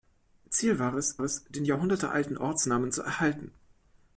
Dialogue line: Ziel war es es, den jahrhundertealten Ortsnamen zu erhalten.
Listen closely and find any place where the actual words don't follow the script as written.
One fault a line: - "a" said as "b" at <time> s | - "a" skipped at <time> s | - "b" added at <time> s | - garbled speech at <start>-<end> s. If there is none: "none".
none